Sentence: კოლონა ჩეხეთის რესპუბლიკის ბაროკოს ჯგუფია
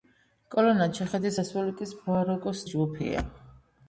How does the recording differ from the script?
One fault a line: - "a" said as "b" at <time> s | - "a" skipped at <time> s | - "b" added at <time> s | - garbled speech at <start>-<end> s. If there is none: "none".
none